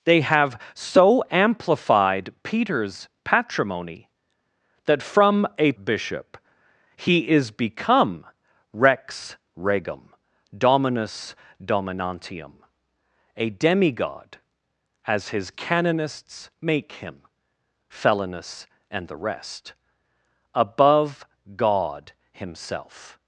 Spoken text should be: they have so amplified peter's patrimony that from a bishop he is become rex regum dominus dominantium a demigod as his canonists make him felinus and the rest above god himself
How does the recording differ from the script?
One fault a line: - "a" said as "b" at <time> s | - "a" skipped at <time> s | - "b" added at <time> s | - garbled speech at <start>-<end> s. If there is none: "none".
none